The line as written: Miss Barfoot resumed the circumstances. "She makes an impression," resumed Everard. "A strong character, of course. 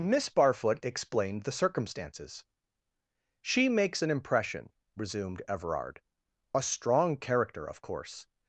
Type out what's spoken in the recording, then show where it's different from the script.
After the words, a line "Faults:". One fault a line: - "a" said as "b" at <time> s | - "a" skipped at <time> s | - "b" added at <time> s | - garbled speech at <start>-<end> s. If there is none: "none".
Miss Barfoot explained the circumstances. "She makes an impression," resumed Everard. "A strong character, of course.
Faults:
- "resumed" said as "explained" at 0.8 s